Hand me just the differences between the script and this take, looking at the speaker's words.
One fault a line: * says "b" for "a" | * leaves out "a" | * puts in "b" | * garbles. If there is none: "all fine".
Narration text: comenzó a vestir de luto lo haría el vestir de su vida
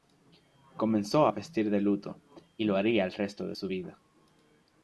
* puts in "y"
* says "resto" for "vestir"